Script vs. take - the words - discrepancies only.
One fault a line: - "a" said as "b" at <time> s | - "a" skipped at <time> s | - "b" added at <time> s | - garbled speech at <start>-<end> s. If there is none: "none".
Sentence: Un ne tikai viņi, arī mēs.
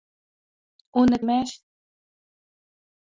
- "tikai viņi arī" skipped at 1.2 s